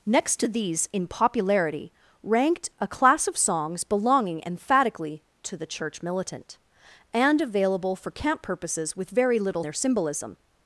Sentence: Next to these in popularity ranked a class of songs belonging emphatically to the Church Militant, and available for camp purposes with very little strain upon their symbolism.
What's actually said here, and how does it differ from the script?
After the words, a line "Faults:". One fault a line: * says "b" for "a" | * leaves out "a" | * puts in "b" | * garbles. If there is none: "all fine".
Next to these in popularity ranked a class of songs belonging emphatically to the Church Militant, and available for camp purposes with very little their symbolism.
Faults:
* leaves out "strain upon"